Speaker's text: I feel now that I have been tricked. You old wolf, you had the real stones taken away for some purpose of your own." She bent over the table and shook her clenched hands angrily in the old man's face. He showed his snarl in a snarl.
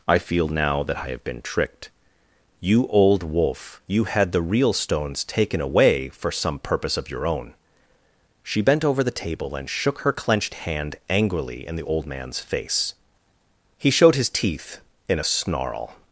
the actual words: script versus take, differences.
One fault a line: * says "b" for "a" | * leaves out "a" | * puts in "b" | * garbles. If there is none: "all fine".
* says "hand" for "hands"
* says "teeth" for "snarl"